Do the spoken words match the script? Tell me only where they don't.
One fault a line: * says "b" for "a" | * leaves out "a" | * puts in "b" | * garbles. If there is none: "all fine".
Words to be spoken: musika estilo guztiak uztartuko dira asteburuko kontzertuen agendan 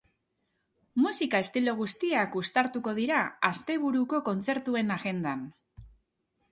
all fine